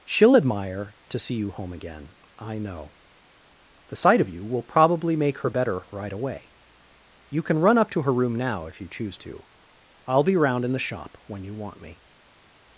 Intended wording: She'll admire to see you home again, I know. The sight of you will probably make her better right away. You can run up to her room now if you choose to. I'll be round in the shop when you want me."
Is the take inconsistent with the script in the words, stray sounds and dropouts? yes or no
no